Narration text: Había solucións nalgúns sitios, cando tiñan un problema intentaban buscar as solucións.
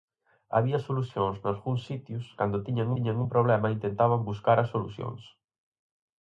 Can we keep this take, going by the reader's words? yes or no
no